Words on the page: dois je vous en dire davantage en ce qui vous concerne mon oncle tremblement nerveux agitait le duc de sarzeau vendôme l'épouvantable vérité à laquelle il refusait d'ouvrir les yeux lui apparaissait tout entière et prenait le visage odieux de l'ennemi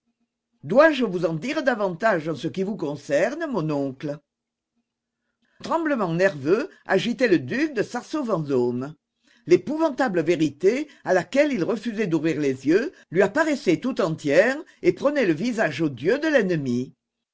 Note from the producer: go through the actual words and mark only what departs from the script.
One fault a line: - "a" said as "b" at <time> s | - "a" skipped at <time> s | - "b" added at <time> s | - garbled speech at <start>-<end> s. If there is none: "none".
none